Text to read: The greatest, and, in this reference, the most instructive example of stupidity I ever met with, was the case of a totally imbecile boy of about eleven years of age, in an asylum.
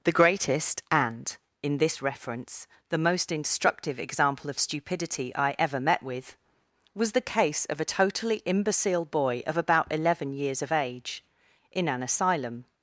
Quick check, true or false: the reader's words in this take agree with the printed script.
true